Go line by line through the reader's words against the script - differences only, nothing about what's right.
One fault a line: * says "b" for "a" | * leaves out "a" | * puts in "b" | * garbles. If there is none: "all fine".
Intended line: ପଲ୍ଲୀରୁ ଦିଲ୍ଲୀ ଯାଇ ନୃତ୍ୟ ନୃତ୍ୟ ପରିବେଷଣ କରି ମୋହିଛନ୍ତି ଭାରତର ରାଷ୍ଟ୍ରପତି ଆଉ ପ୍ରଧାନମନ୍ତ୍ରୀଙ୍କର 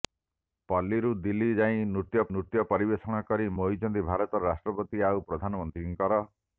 all fine